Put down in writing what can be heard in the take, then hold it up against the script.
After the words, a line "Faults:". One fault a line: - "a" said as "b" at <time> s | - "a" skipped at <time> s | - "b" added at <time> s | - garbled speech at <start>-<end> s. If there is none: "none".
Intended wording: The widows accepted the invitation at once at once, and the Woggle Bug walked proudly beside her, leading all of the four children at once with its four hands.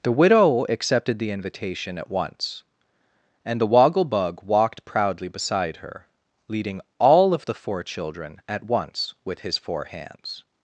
The widow accepted the invitation at once, and the Woggle Bug walked proudly beside her, leading all of the four children at once with his four hands.
Faults:
- "widows" said as "widow" at 0.1 s
- "at once" skipped at 2.6 s
- "its" said as "his" at 9.4 s